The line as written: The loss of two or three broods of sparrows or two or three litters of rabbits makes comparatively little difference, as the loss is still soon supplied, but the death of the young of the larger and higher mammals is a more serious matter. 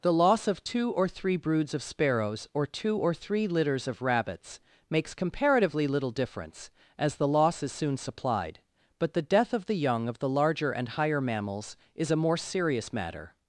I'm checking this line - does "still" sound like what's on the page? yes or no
no